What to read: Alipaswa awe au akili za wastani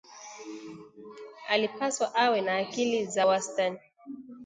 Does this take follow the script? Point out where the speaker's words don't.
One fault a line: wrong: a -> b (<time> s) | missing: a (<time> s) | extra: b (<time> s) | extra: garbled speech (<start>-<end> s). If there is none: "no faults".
wrong: au -> na (2.4 s)